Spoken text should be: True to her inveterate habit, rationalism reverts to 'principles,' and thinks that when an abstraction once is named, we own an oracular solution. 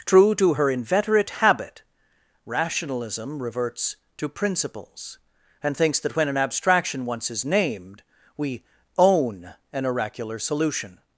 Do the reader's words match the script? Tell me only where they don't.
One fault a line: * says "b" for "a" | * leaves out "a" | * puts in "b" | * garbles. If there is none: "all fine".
all fine